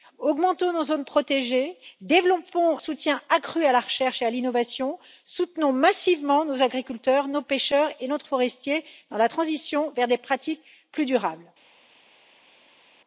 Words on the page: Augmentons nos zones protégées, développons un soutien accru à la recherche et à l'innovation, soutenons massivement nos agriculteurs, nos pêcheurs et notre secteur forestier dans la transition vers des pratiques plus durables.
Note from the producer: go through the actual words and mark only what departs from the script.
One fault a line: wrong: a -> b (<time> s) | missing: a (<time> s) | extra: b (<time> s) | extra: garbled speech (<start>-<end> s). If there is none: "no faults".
missing: un (2.8 s)
missing: secteur (8.3 s)